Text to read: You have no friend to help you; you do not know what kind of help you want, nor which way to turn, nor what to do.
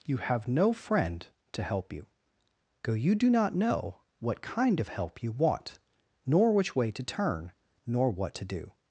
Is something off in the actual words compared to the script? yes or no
yes